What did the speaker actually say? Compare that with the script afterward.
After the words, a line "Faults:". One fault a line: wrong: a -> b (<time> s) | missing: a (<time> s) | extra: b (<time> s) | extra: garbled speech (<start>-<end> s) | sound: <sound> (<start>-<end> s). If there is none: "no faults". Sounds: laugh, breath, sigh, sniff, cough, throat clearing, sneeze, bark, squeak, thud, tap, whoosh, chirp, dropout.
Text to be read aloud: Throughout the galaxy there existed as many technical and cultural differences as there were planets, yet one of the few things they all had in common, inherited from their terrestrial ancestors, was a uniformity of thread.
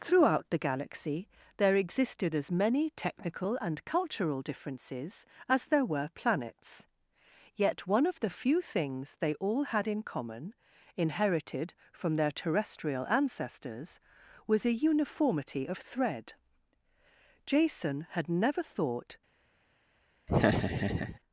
Throughout the galaxy there existed as many technical and cultural differences as there were planets, yet one of the few things they all had in common, inherited from their terrestrial ancestors, was a uniformity of thread. Jason had never thought
Faults:
extra: Jason had never thought (17.5 s)
sound: laugh (20.3-21.2 s)